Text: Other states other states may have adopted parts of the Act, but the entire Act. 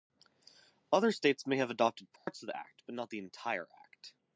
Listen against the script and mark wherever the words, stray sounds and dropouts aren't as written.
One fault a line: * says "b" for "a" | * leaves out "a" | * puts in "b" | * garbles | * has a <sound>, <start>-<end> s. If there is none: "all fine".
* leaves out "other states"
* has a dropout, 2.2-2.3 s
* puts in "not"